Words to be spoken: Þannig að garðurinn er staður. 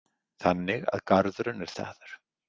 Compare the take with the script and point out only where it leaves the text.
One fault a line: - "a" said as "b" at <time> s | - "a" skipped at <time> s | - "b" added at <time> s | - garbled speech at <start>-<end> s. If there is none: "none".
none